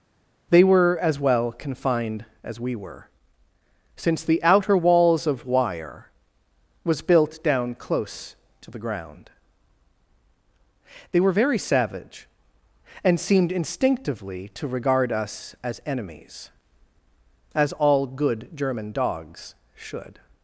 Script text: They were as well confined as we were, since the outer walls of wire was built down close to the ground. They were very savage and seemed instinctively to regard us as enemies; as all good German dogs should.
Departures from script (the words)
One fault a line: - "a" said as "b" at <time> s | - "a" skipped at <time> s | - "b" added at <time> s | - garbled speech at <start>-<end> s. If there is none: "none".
none